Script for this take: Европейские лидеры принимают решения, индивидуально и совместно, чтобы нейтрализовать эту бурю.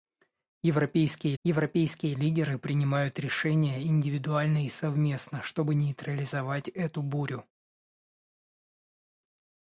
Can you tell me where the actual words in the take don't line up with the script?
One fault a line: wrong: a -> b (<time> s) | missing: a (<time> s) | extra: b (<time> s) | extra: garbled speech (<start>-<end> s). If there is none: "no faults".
extra: европейские (1.4 s)